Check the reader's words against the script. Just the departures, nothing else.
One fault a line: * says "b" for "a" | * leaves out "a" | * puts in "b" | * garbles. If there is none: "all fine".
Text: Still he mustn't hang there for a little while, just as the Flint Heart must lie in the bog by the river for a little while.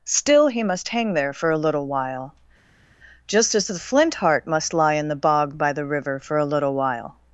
* says "must" for "mustn't"